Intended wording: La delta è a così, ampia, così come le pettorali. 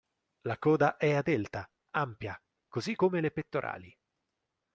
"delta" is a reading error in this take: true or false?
true